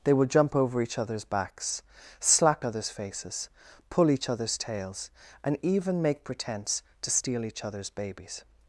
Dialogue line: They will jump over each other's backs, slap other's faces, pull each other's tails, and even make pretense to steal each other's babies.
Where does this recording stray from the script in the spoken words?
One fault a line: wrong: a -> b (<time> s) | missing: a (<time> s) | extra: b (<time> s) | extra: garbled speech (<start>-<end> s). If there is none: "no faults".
no faults